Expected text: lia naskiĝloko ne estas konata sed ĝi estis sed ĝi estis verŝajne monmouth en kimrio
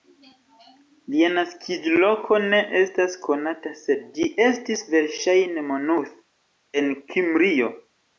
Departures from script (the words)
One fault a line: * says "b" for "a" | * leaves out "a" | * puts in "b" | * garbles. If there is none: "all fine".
* leaves out "sed ĝi estis"